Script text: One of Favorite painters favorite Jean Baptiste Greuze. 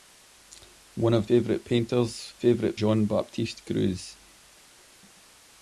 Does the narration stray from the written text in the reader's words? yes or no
no